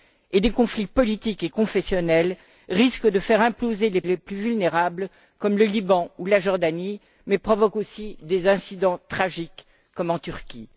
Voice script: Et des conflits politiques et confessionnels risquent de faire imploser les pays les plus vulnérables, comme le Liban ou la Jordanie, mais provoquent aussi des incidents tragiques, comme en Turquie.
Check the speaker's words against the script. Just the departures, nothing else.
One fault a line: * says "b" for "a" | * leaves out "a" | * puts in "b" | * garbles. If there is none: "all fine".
* leaves out "pays"